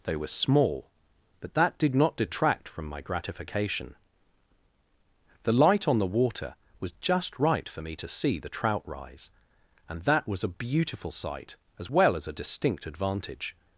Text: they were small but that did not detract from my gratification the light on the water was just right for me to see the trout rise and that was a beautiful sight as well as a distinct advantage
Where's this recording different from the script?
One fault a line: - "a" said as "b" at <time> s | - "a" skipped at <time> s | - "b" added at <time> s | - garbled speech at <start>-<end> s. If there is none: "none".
none